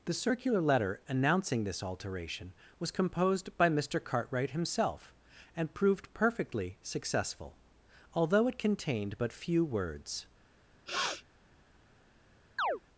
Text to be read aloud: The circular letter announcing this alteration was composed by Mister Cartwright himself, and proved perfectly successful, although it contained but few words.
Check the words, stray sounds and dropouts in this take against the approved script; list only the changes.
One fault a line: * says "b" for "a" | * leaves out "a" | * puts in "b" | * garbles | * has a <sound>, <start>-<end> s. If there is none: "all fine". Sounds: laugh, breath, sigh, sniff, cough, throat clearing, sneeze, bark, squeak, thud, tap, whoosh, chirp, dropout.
* has a sniff, 10.9-11.2 s
* has a chirp, 12.6-12.8 s